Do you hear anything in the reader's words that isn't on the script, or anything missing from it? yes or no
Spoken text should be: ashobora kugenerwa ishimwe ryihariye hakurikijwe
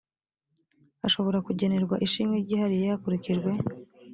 no